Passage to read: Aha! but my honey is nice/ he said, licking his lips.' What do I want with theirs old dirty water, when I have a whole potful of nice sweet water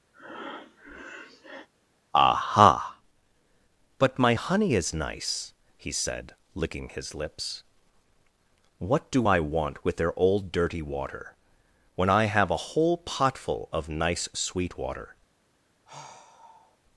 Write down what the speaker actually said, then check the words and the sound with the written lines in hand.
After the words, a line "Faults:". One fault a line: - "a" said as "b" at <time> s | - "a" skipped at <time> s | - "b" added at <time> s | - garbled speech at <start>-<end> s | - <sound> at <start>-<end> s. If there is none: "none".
Aha! but my honey is nice/ he said, licking his lips.' What do I want with their old dirty water, when I have a whole potful of nice sweet water
Faults:
- breath at 0.1-1.7 s
- "theirs" said as "their" at 10.0 s
- sigh at 15.9-16.8 s